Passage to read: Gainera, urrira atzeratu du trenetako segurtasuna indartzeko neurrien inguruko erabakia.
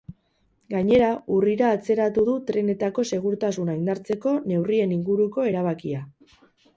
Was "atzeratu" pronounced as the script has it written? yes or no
yes